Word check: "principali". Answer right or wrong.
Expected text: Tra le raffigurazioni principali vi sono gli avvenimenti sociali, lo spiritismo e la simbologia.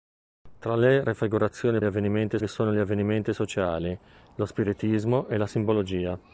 wrong